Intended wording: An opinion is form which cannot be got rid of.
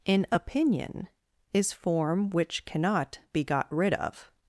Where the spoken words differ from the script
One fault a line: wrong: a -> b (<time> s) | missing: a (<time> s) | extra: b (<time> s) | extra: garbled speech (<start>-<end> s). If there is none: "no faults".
no faults